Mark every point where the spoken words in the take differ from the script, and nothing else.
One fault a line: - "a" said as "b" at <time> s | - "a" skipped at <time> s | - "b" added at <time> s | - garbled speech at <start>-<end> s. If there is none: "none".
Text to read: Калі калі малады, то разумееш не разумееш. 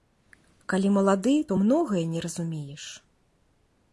- "калі" skipped at 0.9 s
- "разумееш" said as "многае" at 1.6 s